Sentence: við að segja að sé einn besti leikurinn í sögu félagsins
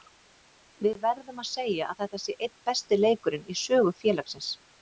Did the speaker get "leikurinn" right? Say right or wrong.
right